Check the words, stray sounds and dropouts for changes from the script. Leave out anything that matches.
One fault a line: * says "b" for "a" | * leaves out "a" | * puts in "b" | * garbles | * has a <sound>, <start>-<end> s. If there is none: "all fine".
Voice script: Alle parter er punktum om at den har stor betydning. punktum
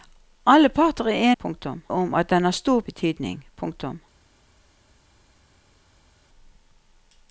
all fine